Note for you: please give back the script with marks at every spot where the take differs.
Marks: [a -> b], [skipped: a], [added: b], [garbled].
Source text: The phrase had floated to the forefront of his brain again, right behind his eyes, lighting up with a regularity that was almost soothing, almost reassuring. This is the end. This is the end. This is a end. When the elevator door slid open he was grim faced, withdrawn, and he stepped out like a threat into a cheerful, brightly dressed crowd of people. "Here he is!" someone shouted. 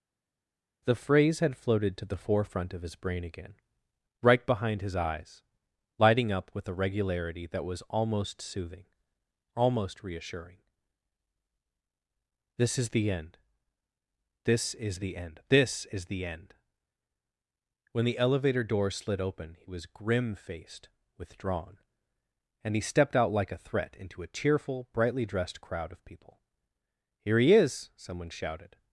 The phrase had floated to the forefront of his brain again, right behind his eyes, lighting up with a regularity that was almost soothing, almost reassuring. This is the end. This is the end. This is [a -> the] end. When the elevator door slid open he was grim faced, withdrawn, and he stepped out like a threat into a cheerful, brightly dressed crowd of people. "Here he is!" someone shouted.